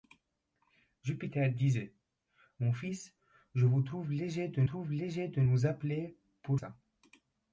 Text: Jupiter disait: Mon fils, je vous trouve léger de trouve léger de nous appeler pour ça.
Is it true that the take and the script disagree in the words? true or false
false